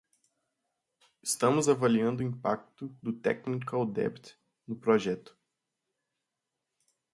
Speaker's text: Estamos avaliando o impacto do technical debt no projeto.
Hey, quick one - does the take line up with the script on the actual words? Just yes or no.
yes